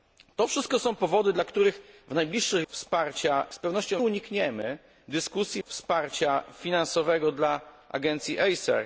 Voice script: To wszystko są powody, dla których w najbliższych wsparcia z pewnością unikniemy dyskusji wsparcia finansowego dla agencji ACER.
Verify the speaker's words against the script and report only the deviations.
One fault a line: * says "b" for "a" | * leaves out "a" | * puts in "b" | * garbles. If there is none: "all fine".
all fine